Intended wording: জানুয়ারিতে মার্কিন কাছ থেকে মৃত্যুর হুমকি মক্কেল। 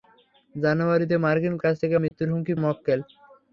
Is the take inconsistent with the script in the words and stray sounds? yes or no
yes